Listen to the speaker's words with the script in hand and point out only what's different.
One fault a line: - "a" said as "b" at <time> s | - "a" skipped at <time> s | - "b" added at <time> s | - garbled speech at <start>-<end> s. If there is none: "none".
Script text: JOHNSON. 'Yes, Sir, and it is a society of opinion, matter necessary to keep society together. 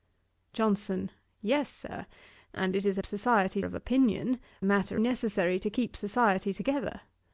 none